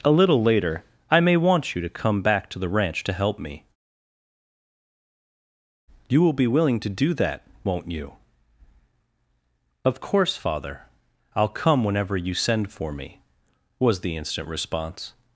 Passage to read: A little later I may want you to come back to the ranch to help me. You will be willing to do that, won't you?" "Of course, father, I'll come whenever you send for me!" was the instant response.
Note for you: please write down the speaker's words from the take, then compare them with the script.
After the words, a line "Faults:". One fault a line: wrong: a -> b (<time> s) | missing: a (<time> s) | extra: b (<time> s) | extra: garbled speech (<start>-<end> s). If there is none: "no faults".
A little later I may want you to come back to the ranch to help me. You will be willing to do that, won't you?" "Of course, father, I'll come whenever you send for me!" was the instant response.
Faults:
no faults